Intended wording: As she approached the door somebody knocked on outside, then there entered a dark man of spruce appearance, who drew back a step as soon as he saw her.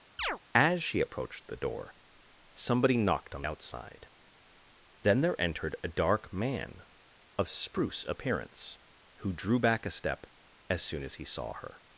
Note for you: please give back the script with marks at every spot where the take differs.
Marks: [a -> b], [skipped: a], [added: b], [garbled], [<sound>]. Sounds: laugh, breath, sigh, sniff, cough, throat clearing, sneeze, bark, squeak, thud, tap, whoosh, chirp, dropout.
[chirp] As she approached the door somebody knocked on outside, then there entered a dark man of spruce appearance, who drew back a step as soon as he saw her.